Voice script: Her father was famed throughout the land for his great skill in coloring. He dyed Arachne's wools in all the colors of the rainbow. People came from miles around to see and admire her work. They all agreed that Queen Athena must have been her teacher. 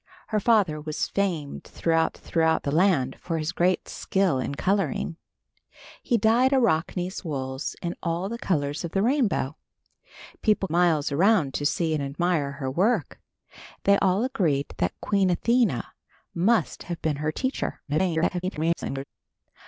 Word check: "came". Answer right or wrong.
wrong